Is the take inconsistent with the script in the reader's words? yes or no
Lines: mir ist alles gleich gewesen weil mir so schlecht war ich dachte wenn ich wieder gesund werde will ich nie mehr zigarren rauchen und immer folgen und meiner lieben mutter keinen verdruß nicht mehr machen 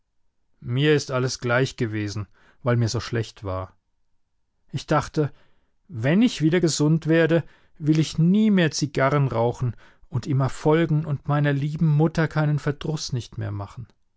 no